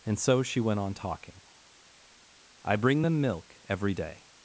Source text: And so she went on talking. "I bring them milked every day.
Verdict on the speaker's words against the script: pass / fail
fail